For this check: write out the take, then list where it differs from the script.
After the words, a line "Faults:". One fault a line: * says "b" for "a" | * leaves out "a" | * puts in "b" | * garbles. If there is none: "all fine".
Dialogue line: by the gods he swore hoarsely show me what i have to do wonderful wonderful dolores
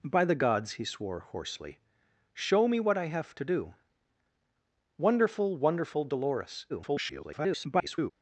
by the gods he swore hoarsely show me what i have to do wonderful wonderful dolores [garbled]
Faults:
* garbles